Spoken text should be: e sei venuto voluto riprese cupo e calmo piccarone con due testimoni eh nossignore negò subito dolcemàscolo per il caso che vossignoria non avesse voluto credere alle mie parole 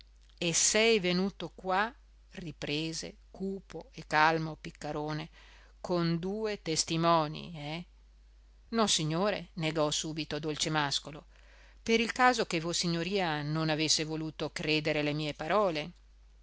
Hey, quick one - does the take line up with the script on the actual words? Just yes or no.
no